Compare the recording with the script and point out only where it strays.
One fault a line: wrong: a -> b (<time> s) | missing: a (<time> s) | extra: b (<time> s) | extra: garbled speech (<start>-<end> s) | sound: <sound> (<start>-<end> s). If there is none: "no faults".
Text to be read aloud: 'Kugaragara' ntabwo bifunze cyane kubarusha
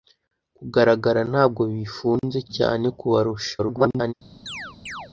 extra: garbled speech (3.6-4.1 s)
sound: chirp (4.5-5.1 s)